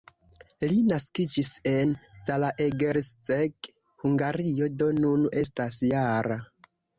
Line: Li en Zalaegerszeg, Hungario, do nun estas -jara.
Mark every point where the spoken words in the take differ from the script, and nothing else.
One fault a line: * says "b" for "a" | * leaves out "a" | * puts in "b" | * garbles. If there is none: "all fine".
* puts in "naskiĝis"